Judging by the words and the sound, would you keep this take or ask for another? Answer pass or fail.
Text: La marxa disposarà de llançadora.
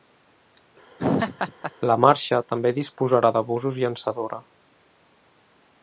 fail